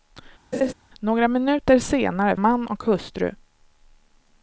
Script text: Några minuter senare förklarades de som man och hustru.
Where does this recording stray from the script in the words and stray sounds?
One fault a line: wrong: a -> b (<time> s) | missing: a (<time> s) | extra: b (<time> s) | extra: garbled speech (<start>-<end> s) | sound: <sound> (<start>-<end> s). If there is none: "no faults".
sound: laugh (0.5-0.7 s)
missing: förklarades de som (2.4 s)